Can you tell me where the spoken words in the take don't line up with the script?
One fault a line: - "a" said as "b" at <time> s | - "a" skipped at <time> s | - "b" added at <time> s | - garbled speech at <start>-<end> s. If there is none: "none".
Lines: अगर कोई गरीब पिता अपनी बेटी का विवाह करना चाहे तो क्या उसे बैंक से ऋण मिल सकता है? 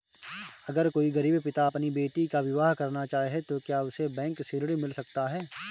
none